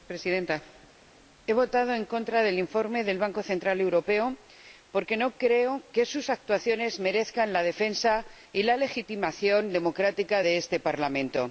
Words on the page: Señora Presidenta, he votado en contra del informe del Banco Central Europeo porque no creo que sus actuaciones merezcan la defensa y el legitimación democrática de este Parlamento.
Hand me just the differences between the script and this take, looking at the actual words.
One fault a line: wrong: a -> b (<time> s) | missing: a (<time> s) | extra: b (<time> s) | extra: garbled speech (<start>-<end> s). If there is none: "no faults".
wrong: el -> la (8.6 s)